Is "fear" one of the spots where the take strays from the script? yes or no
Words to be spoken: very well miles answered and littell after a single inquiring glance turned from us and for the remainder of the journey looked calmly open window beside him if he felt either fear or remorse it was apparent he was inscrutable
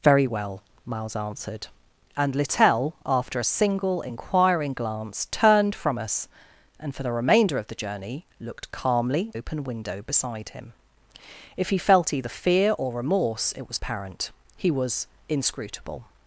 no